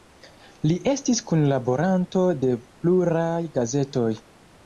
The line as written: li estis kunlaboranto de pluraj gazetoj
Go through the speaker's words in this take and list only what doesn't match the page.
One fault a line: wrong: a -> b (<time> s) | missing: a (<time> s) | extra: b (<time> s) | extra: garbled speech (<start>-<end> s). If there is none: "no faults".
no faults